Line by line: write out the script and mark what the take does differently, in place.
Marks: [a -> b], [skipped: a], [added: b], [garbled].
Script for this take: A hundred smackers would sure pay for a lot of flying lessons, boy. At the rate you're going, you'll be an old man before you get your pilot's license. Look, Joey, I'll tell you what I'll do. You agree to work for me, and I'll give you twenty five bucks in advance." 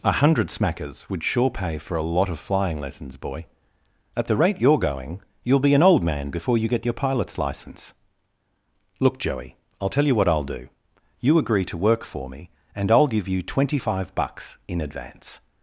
A hundred smackers would sure pay for a lot of flying lessons, boy. At the rate you're going, you'll be an old man before you get your pilot's license. Look, Joey, I'll tell you what I'll do. You agree to work for me, and I'll give you twenty five bucks in advance."